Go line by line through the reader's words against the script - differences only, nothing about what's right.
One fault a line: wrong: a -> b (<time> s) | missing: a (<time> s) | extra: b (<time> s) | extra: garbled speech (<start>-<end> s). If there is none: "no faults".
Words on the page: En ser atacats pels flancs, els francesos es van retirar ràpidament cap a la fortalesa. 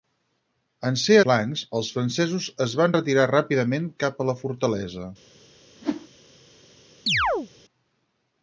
missing: atacats pels (1.2 s)